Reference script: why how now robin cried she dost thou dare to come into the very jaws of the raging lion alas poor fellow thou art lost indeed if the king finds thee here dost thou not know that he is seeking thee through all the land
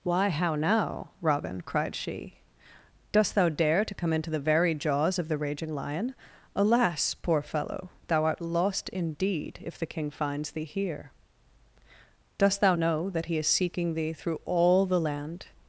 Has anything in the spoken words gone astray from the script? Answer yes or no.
yes